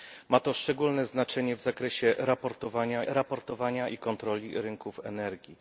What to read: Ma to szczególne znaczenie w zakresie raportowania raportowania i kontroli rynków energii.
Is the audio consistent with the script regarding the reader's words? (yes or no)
yes